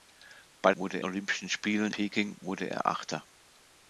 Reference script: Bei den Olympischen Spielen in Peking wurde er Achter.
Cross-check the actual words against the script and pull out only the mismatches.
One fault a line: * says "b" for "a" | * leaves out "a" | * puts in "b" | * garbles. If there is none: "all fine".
* says "wurde" for "den"
* leaves out "in"